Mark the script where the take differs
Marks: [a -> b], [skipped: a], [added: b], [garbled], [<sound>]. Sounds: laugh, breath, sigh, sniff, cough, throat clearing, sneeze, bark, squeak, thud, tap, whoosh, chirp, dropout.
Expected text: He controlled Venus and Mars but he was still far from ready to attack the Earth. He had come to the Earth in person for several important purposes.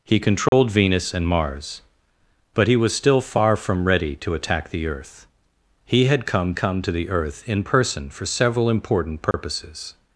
He controlled [dropout] Venus and Mars but he was still far from ready to attack the Earth. He had come [added: come] to the Earth in person for several important purposes. [dropout]